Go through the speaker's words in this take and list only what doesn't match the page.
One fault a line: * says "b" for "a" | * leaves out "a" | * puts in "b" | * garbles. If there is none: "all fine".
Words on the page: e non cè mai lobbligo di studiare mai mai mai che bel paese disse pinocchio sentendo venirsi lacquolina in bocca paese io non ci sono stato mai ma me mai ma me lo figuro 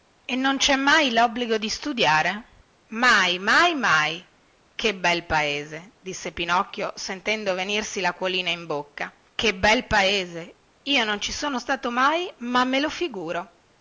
* puts in "che bel"
* leaves out "mai ma me"